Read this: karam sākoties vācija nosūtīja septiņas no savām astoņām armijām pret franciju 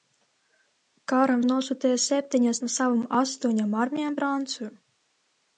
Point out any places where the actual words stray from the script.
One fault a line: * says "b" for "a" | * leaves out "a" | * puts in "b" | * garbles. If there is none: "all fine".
* leaves out "sākoties vācija"
* leaves out "pret"